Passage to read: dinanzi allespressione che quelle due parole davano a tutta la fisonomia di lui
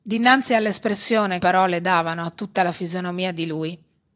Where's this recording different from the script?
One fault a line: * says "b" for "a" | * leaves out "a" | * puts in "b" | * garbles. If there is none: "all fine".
* leaves out "che quelle due"